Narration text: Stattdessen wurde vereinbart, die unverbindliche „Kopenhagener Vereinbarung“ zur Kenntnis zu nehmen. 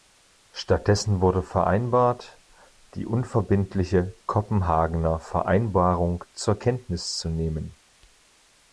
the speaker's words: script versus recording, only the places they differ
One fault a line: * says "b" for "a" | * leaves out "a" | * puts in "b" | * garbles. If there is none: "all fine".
all fine